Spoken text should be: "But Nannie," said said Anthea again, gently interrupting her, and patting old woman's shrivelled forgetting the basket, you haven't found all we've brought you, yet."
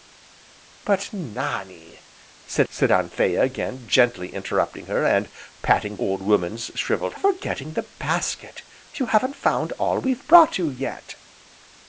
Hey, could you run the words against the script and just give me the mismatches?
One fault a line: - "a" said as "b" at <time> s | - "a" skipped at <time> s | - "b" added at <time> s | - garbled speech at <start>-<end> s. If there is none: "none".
none